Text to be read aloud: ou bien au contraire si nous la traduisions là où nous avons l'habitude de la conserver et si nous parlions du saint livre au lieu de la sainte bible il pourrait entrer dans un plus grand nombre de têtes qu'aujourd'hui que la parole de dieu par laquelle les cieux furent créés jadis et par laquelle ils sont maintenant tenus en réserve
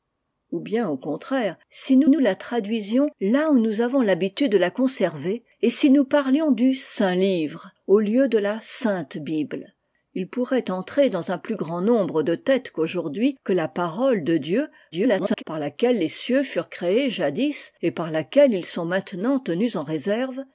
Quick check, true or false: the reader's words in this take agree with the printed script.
false